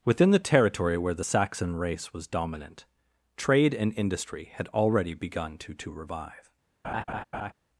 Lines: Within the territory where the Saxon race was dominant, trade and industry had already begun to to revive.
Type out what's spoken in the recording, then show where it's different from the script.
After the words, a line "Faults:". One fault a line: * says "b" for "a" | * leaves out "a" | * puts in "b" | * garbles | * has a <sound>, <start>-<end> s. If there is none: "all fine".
Within the territory where the Saxon race was dominant, trade and industry had already begun to to revive.
Faults:
* has a laugh, 6.8-7.5 s